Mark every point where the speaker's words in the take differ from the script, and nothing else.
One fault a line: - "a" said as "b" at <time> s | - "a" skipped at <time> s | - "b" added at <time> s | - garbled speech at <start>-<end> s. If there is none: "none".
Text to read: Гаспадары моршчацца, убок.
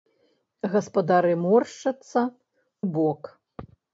none